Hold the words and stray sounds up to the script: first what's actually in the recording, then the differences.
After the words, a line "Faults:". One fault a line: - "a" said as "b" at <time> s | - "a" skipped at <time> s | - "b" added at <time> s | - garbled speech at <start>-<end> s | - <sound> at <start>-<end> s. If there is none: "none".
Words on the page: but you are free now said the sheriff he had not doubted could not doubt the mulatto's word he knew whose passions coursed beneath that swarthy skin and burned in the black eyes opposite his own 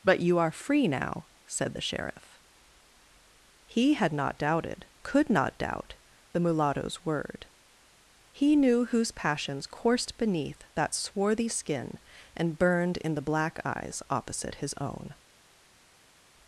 but you are free now said the sheriff he had not doubted could not doubt the mulatto's word he knew whose passions coursed beneath that swarthy skin and burned in the black eyes opposite his own
Faults:
none